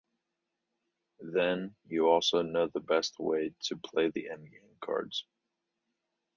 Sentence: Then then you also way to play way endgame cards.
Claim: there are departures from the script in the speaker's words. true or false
true